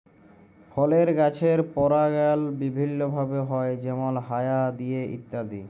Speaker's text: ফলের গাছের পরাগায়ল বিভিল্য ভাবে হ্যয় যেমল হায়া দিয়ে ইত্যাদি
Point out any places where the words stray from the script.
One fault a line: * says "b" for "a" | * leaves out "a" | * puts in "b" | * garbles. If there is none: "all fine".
all fine